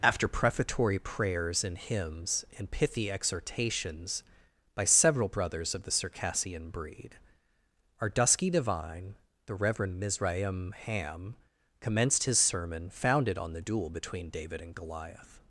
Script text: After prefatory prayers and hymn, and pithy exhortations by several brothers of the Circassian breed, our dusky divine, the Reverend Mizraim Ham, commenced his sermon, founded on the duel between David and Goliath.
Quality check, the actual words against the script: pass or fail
fail